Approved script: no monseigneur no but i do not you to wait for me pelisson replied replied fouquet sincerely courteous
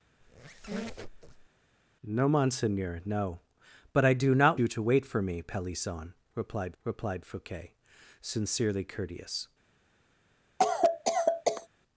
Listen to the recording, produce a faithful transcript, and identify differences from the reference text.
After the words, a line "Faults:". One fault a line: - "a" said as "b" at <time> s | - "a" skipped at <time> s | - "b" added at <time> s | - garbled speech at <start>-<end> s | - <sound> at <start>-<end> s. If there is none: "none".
no monseigneur no but i do not you to wait for me pelisson replied replied fouquet sincerely courteous
Faults:
- squeak at 0.2-1.5 s
- cough at 10.6-11.7 s